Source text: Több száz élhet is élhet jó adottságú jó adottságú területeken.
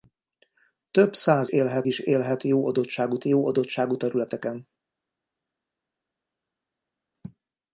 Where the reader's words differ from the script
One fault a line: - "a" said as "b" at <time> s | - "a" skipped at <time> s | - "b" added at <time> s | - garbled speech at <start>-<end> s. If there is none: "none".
none